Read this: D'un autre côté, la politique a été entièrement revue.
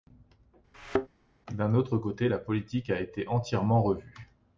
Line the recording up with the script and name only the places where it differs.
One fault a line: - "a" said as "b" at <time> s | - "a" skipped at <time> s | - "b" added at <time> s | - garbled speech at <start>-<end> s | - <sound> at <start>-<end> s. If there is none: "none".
- thud at 0.7-1.1 s